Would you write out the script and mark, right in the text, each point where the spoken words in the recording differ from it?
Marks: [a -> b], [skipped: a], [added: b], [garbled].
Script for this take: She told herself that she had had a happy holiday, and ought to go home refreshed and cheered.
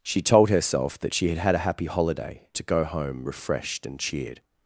She told herself that she had had a happy holiday, [skipped: and ought] to go home refreshed and cheered.